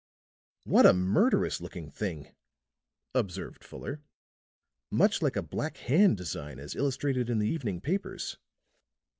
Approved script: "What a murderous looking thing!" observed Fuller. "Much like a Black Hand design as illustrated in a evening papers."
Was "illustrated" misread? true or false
false